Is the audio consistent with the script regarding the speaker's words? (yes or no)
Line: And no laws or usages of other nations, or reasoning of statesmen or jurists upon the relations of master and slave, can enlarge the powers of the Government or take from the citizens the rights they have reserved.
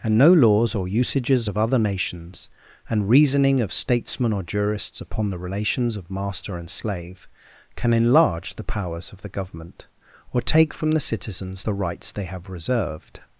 no